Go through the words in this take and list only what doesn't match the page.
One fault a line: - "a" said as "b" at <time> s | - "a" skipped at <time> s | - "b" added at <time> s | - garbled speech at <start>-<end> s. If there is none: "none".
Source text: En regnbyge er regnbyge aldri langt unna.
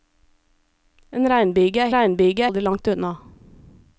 none